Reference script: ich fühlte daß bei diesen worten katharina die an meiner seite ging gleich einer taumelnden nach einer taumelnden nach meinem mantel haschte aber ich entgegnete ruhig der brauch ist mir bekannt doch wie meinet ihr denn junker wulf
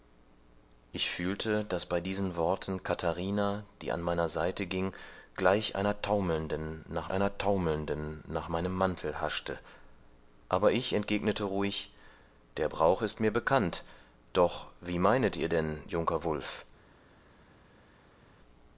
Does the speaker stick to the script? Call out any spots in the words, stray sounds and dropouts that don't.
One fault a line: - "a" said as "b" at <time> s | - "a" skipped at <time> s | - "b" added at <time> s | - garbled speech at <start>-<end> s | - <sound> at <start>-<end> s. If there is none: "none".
none